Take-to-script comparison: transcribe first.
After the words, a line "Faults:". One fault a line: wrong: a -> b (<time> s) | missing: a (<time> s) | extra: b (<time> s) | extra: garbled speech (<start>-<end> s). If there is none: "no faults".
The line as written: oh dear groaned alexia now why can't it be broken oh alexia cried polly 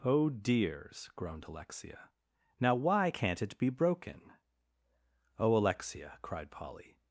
oh dears groaned alexia now why can't it be broken oh alexia cried polly
Faults:
wrong: dear -> dears (0.3 s)